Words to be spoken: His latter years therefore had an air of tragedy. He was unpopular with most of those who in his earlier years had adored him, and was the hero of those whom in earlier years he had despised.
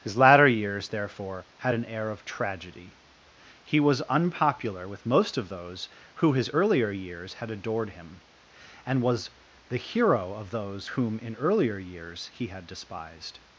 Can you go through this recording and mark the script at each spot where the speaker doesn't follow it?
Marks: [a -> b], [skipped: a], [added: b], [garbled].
His latter years therefore had an air of tragedy. He was unpopular with most of those who [skipped: in] his earlier years had adored him, and was the hero of those whom in earlier years he had despised.